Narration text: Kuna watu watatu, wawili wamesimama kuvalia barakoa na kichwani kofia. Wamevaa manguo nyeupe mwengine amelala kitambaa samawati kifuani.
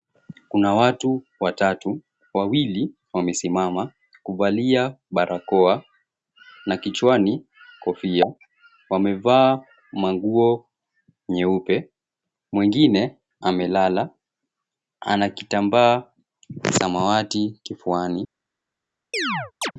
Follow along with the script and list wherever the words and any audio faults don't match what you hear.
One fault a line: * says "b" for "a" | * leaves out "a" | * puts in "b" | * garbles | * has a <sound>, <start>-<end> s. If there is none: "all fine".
* puts in "ana"
* has a chirp, 19.1-19.7 s